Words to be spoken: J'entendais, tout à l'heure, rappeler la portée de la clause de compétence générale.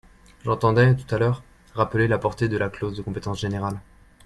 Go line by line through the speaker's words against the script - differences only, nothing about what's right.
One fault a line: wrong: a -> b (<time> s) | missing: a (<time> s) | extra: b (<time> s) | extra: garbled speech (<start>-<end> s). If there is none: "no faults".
no faults